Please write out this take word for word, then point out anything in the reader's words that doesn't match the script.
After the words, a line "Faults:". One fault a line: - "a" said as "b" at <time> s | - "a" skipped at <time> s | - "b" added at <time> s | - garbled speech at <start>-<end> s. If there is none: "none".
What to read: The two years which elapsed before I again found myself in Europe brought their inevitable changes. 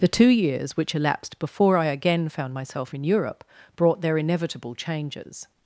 The two years which elapsed before I again found myself in Europe brought their inevitable changes.
Faults:
none